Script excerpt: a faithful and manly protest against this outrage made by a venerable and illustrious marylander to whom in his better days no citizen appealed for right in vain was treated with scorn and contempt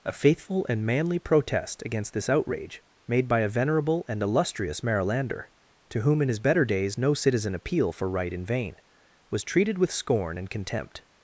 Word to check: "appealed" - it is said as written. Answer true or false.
false